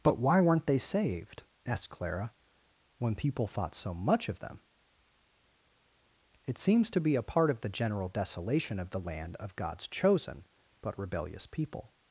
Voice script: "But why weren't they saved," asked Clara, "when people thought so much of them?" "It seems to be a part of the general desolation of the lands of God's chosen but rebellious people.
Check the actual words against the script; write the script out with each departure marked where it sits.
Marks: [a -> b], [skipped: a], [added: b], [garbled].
"But why weren't they saved," asked Clara, "when people thought so much of them?" "It seems to be a part of the general desolation of the [lands -> land] of God's chosen but rebellious people.